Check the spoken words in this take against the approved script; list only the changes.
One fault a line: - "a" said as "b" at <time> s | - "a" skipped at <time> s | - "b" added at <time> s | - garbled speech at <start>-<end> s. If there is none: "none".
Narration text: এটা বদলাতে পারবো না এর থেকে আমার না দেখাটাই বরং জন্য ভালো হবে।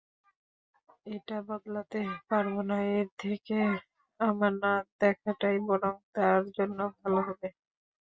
- "তার" added at 6.1 s